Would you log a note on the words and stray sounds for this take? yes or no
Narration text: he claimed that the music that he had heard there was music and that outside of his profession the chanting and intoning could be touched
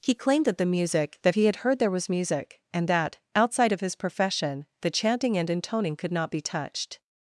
yes